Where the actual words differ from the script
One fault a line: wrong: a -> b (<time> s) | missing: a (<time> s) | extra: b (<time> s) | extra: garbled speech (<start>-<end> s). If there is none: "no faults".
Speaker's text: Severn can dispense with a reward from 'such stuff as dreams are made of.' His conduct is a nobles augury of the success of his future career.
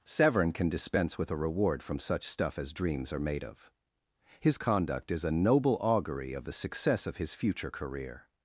wrong: nobles -> noble (5.3 s)